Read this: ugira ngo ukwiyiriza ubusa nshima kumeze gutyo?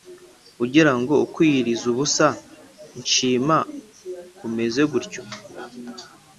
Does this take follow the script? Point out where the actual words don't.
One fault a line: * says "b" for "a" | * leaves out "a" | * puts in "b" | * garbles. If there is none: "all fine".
all fine